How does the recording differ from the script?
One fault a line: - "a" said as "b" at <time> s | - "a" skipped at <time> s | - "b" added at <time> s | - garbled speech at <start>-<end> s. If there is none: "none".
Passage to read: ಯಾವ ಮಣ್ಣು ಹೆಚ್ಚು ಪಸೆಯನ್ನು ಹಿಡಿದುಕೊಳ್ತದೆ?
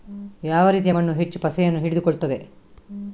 - "ರೀತಿಯ" added at 0.7 s